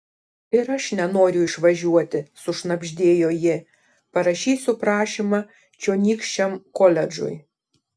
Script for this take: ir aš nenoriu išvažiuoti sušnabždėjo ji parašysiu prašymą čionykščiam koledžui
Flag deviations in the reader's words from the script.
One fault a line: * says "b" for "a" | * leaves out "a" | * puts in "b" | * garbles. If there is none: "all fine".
all fine